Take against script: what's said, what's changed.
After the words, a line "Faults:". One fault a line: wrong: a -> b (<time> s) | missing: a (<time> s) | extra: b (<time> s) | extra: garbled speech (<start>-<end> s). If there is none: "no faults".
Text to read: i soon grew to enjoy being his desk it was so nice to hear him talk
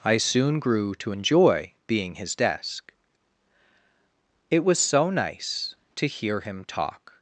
i soon grew to enjoy being his desk it was so nice to hear him talk
Faults:
no faults